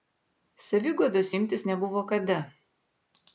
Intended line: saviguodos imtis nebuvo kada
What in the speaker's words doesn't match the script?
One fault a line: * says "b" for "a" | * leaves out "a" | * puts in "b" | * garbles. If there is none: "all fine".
all fine